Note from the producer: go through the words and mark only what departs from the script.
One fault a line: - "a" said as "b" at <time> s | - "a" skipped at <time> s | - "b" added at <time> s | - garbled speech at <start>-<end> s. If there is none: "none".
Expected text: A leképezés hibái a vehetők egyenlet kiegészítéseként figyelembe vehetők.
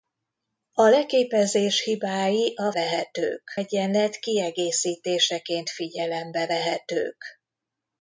none